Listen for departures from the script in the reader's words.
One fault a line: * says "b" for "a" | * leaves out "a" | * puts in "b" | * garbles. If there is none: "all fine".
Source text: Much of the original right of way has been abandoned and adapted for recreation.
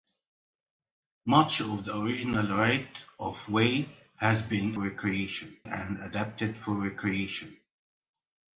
* says "recreation" for "abandoned"